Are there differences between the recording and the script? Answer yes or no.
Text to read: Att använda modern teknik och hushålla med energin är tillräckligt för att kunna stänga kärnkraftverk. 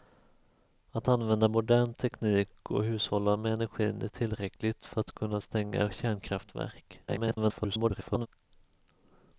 yes